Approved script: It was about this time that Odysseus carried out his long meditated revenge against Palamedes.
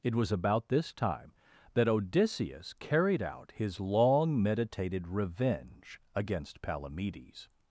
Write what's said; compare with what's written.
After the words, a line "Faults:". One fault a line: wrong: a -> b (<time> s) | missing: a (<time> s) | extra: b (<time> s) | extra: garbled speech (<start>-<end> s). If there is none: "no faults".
It was about this time that Odysseus carried out his long meditated revenge against Palamedes.
Faults:
no faults